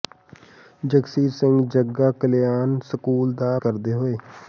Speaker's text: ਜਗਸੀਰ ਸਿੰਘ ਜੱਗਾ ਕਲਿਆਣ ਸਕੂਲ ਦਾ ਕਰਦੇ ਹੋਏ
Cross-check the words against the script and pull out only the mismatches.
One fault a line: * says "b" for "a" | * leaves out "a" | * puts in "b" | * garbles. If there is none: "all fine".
all fine